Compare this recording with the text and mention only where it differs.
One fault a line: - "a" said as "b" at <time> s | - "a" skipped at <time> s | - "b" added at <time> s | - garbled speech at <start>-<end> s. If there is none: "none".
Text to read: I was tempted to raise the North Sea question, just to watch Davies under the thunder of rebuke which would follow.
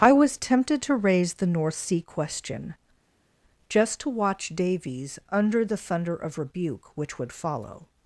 none